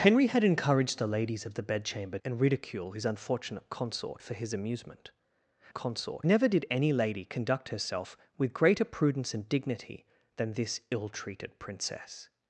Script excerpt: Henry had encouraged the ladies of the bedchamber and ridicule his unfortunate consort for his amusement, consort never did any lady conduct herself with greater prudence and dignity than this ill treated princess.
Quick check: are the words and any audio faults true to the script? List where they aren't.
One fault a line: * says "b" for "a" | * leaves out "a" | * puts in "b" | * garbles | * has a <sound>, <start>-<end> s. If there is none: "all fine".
all fine